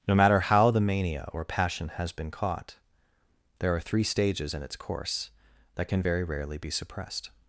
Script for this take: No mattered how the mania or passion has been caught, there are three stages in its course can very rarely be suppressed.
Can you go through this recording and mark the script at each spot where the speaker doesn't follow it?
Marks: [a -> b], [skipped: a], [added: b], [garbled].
No [mattered -> matter] how the mania or passion has been caught, there are three stages in its course [added: that] can very rarely be suppressed.